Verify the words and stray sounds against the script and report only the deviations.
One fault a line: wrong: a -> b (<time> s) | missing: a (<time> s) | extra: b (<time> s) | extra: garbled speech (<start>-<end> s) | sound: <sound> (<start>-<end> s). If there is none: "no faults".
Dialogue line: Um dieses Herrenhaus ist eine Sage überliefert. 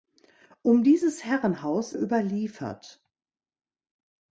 missing: ist eine Sage (1.9 s)